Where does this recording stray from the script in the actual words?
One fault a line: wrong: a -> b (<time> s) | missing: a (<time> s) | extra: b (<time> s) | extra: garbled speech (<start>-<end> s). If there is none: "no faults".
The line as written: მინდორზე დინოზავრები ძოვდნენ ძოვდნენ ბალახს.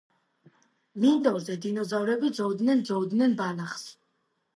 no faults